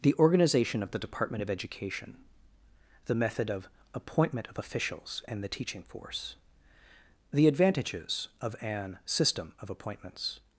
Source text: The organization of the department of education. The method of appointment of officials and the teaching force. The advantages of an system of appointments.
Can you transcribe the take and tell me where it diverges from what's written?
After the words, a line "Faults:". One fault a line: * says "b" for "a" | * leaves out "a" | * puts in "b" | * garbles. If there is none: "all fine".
The organization of the department of education. The method of appointment of officials and the teaching force. The advantages of an system of appointments.
Faults:
all fine